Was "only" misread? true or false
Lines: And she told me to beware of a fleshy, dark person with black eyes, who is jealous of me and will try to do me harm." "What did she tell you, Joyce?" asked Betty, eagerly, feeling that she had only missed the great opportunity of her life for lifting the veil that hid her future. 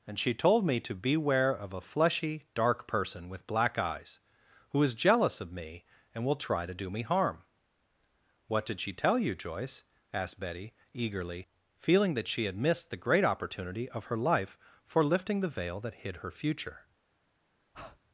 true